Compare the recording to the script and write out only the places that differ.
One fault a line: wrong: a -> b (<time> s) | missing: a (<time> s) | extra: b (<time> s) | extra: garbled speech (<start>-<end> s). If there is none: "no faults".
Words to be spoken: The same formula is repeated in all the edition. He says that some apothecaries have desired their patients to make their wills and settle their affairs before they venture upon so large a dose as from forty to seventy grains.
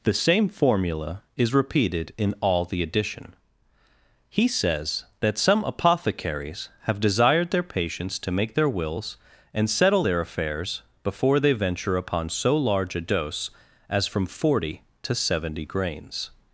no faults